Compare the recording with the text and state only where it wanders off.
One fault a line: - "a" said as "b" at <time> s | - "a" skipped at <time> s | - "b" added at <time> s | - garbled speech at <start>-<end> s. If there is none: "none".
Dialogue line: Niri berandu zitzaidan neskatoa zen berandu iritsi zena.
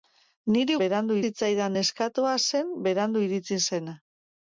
none